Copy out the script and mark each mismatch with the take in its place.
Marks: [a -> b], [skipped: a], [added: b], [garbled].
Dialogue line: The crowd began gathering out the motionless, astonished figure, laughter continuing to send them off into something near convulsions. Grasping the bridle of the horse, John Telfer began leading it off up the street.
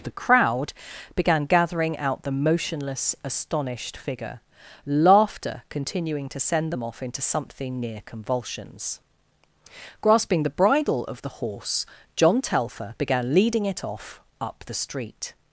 The crowd began gathering out the motionless, astonished figure, laughter continuing to send them off into something near convulsions. Grasping the bridle of the horse, John Telfer began leading it off up the street.